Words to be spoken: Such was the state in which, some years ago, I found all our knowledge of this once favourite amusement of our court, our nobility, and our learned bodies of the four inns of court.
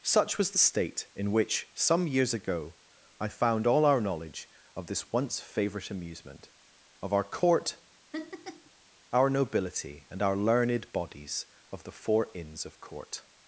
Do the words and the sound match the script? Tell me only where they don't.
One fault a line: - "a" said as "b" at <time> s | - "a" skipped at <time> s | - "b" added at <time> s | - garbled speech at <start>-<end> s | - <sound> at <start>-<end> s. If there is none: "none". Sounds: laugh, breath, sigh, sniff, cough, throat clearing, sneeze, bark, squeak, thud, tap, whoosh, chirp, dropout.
- laugh at 8.1-8.7 s